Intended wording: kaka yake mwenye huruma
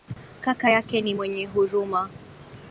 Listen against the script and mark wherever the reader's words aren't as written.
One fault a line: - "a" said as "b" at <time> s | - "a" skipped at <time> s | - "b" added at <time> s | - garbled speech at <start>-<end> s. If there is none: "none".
- "ni" added at 1.0 s